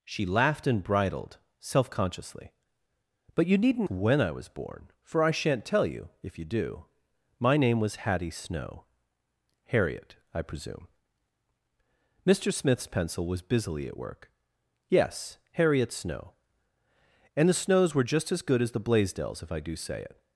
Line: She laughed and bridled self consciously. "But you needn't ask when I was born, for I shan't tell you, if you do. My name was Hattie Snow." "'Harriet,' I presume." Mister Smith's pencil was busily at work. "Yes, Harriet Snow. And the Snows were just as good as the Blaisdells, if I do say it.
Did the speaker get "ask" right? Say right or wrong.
wrong